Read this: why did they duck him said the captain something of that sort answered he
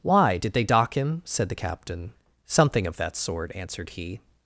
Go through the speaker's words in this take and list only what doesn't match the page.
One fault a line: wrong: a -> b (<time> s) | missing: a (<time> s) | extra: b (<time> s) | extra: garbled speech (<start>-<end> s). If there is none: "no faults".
wrong: duck -> dock (0.6 s)